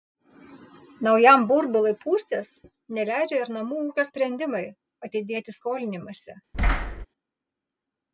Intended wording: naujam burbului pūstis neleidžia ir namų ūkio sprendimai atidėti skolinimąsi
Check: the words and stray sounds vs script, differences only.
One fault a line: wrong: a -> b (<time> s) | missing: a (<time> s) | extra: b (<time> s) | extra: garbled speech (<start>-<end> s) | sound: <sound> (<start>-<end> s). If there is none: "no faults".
sound: thud (6.5-7.1 s)